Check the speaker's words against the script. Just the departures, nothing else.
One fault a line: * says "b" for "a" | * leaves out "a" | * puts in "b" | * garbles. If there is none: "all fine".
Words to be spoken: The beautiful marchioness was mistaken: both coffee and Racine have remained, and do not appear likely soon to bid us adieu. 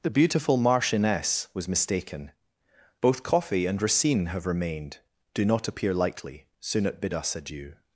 * leaves out "and"
* says "at" for "to"